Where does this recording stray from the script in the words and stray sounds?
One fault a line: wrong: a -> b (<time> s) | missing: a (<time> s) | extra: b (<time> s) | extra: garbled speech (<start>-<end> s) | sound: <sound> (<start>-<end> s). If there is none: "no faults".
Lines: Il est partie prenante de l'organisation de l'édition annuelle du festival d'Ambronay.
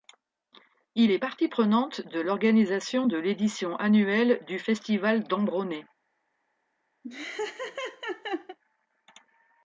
sound: laugh (7.0-8.6 s)